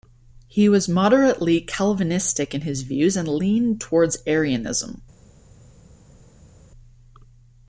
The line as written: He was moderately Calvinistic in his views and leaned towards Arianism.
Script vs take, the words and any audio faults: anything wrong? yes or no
no